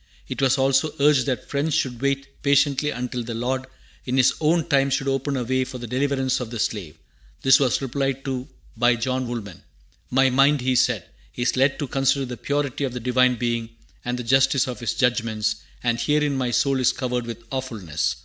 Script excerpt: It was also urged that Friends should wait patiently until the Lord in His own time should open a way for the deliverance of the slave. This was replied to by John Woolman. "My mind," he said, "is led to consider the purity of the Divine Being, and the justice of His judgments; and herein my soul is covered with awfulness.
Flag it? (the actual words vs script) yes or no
no